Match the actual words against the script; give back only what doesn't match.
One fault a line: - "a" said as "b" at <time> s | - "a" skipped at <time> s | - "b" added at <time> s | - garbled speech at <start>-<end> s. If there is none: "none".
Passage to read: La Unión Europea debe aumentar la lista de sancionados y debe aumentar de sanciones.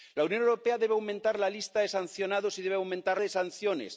none